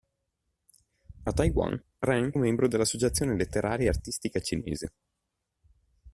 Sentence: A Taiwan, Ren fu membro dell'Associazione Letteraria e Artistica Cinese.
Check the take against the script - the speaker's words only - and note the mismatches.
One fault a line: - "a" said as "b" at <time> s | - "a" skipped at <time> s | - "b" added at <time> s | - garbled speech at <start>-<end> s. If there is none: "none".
- "fu" skipped at 2.3 s